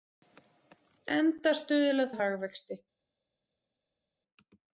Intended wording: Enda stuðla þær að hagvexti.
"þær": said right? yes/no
no